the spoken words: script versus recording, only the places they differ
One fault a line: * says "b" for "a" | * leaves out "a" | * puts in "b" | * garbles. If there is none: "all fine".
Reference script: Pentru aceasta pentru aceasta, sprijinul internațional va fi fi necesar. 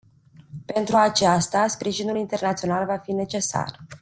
* leaves out "pentru aceasta"
* leaves out "fi"